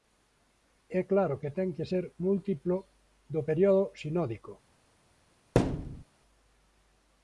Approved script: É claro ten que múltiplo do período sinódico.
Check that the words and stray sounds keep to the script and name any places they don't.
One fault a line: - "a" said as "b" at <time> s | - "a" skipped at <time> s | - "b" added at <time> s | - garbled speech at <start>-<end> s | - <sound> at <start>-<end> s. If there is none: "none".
- "que" added at 1.4 s
- "ser" added at 1.9 s
- thud at 5.6-6.0 s